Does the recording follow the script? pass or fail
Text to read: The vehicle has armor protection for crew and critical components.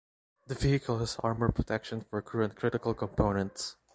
pass